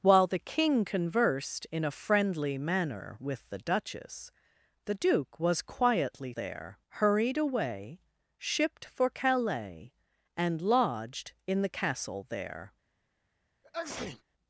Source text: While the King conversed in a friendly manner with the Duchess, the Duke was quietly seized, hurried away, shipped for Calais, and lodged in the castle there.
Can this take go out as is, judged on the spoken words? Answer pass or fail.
fail